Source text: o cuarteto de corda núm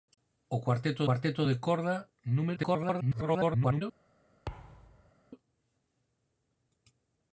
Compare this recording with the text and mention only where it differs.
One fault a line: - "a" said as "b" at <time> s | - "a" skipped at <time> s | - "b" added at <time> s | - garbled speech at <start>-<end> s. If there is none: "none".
- "cuarteto" added at 1.0 s
- garbled speech at 2.6-3.8 s